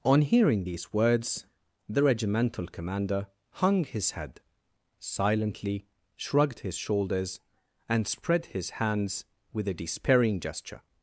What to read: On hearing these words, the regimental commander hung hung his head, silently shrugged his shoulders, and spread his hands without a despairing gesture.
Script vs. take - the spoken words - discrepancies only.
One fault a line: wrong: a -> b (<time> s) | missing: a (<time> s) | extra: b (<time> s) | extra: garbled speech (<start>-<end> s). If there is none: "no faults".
missing: hung (3.8 s)
wrong: without -> with (9.5 s)